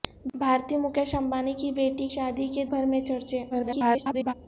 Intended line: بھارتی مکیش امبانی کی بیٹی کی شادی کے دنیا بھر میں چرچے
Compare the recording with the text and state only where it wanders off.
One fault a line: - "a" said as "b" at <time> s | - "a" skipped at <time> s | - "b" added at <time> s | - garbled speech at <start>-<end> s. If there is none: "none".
- "کی" skipped at 2.1 s
- "دنیا" skipped at 2.6 s
- garbled speech at 3.5-4.3 s